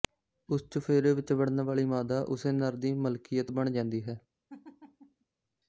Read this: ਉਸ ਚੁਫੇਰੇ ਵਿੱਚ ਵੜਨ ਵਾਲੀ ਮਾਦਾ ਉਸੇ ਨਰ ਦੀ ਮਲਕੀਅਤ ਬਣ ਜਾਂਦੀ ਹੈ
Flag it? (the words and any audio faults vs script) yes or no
yes